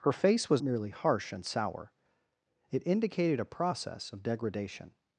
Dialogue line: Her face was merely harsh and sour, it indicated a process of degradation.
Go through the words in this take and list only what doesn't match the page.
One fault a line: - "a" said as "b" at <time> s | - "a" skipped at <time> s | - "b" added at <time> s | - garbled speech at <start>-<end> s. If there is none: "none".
none